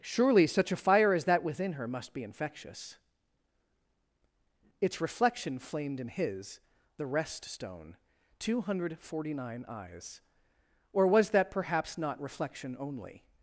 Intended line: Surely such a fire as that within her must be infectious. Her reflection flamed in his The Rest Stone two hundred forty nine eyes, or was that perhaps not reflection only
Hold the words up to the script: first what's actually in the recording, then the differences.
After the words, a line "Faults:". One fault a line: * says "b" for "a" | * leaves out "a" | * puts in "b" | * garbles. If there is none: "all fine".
Surely such a fire as that within her must be infectious. Its reflection flamed in his The Rest Stone two hundred forty nine eyes, or was that perhaps not reflection only
Faults:
* says "Its" for "Her"